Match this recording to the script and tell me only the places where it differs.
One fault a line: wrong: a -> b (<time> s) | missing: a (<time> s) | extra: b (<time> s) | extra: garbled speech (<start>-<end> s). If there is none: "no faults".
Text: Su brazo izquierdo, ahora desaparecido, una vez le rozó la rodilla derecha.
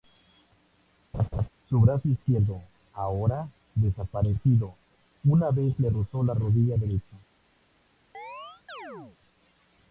no faults